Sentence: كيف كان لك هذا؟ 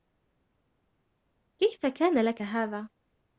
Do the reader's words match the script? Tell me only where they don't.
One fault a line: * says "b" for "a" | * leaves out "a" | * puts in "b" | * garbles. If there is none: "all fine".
all fine